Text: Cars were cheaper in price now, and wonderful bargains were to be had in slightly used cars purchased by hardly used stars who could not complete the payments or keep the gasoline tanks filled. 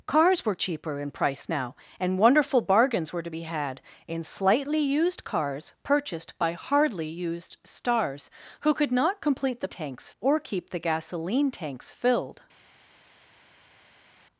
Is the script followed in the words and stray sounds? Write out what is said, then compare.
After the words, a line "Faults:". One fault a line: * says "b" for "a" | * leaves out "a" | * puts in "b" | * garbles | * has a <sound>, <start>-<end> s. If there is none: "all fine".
Cars were cheaper in price now, and wonderful bargains were to be had in slightly used cars purchased by hardly used stars who could not complete the tanks or keep the gasoline tanks filled.
Faults:
* says "tanks" for "payments"